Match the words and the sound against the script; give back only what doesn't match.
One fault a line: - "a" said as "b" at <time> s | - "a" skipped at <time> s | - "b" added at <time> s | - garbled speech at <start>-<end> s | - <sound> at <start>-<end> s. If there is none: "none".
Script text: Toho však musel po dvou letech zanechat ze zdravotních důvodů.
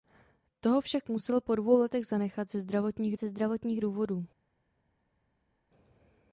- "ze zdravotních" added at 3.2 s